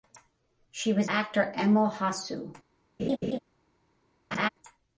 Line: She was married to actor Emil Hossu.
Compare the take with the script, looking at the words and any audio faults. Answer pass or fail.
fail